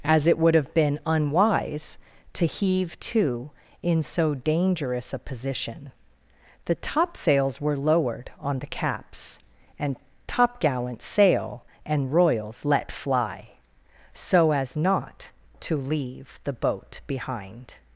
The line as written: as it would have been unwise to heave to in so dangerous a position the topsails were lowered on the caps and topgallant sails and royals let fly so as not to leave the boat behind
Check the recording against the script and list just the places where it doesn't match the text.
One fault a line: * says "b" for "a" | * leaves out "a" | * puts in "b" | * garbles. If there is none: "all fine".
* says "sail" for "sails"